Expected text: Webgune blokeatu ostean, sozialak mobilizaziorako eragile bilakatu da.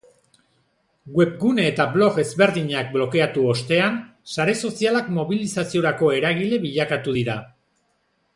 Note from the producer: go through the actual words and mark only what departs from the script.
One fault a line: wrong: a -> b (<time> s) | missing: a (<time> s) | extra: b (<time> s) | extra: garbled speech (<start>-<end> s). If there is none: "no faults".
extra: eta blog ezberdinak (1.7 s)
extra: sare (4.4 s)
wrong: da -> dira (7.2 s)